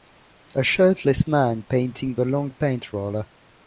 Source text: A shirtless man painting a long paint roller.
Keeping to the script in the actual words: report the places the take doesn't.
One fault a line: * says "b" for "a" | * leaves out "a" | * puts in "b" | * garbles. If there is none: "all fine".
all fine